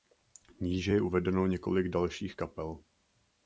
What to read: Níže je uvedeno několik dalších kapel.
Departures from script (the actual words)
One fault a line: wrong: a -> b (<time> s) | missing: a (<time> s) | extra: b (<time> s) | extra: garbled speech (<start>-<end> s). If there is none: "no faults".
no faults